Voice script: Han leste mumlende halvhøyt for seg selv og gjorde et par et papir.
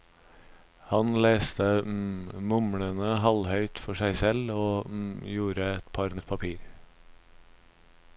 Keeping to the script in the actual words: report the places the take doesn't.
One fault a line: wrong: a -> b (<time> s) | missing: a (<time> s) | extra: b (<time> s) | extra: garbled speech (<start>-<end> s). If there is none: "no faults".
no faults